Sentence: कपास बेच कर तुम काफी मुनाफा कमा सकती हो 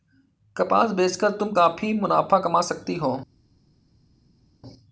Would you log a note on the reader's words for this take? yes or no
no